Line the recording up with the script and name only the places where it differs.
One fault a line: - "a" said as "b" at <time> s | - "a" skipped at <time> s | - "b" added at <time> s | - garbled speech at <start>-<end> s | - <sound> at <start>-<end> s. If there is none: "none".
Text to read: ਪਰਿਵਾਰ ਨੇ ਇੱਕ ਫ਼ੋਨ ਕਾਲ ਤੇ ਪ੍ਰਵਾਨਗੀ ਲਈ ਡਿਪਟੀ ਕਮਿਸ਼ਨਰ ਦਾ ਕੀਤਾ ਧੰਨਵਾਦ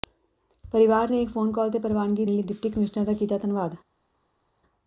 none